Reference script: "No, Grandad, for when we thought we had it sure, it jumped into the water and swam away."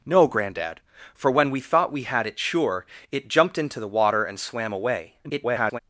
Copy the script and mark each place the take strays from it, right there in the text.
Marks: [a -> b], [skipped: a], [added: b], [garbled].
"No, Grandad, for when we thought we had it sure, it jumped into the water and swam away." [garbled]